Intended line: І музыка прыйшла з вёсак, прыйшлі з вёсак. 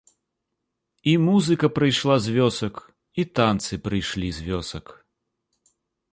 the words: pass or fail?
fail